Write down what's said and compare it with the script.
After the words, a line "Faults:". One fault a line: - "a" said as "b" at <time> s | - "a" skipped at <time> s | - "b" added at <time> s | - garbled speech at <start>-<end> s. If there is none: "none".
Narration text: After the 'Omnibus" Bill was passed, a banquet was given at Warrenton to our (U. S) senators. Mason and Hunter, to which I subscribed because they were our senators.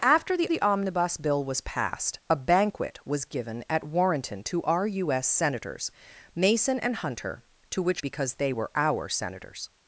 After the the 'Omnibus" Bill was passed, a banquet was given at Warrenton to our (U. S) senators. Mason and Hunter, to which because they were our senators.
Faults:
- "the" added at 0.5 s
- "I subscribed" skipped at 8.0 s